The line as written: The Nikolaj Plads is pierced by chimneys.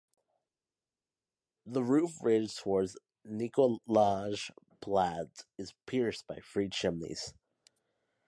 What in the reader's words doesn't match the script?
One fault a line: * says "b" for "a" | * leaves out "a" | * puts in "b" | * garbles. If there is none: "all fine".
* puts in "roof ridge towards"
* puts in "three"